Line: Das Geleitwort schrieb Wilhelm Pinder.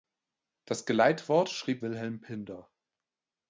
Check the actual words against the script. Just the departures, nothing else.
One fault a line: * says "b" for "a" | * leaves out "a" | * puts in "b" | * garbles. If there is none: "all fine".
all fine